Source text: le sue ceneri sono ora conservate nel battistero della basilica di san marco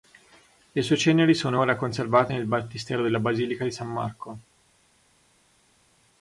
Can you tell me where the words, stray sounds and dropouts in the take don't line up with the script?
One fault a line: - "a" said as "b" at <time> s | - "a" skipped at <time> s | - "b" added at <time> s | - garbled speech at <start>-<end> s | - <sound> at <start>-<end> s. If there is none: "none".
none